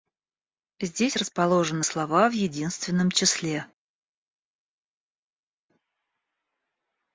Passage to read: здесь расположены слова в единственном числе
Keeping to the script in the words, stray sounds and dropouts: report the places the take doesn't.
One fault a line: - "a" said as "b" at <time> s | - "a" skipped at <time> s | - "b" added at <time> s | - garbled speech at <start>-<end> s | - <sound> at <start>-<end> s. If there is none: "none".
none